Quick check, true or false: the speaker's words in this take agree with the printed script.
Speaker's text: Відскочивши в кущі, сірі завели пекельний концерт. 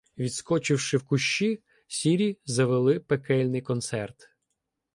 true